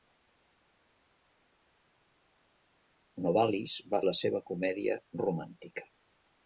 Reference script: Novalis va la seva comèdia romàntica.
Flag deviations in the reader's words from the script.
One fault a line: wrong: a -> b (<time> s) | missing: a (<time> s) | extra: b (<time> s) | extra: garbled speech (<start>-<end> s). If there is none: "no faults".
no faults